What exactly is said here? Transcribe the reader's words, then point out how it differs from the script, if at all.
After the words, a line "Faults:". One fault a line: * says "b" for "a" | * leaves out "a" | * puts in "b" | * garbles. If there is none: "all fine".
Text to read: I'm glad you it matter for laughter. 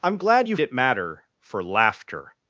I'm glad you it matter for laughter.
Faults:
all fine